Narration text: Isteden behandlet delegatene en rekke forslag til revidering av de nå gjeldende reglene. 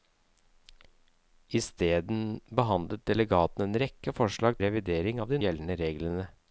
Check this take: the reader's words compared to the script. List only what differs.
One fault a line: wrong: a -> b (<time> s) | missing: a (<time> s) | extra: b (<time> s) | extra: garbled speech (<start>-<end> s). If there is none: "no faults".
missing: til (4.6 s)
missing: nå (5.4 s)